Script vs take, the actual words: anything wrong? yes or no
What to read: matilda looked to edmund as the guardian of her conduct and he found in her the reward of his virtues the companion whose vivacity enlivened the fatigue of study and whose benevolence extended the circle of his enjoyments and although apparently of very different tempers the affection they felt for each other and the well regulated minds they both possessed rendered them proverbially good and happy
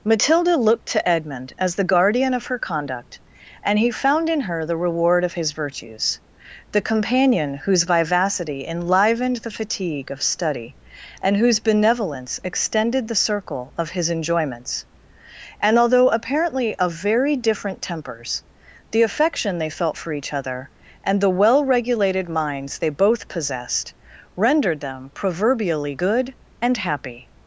no